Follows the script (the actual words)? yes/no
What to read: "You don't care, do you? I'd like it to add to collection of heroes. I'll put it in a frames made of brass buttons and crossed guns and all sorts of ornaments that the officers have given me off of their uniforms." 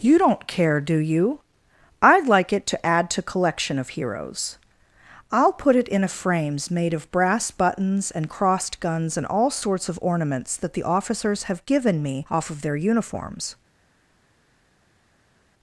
yes